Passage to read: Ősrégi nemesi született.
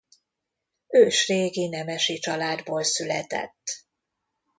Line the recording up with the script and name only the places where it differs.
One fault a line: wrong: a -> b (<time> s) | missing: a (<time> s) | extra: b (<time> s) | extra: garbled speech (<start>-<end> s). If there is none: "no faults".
extra: családból (2.2 s)